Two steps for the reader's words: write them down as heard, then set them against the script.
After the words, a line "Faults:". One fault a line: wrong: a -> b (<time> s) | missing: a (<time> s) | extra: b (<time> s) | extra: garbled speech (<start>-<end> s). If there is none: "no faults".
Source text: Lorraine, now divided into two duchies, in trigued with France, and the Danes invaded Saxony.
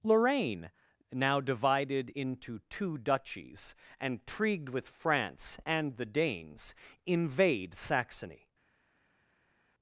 Lorraine, now divided into two duchies, and trigued with France, and the Danes invade Saxony.
Faults:
wrong: in -> and (4.0 s)
wrong: invaded -> invade (7.1 s)